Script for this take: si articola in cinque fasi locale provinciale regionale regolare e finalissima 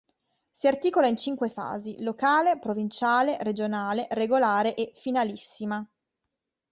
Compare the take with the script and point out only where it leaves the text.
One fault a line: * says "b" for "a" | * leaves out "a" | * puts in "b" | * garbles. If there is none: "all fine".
all fine